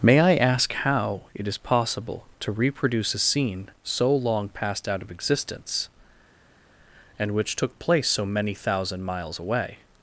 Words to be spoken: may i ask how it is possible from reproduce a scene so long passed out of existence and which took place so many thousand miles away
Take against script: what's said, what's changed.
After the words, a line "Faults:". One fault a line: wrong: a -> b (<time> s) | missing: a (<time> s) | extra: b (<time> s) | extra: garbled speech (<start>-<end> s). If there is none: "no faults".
may i ask how it is possible to reproduce a scene so long passed out of existence and which took place so many thousand miles away
Faults:
wrong: from -> to (2.4 s)